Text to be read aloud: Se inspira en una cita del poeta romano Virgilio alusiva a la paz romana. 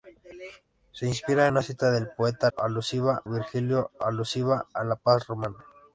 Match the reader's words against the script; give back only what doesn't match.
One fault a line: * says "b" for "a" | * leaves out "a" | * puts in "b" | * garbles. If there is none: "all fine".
* leaves out "en"
* says "alusiva" for "romano"